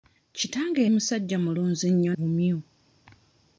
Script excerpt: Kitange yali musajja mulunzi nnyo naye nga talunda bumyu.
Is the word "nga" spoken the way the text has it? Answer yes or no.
no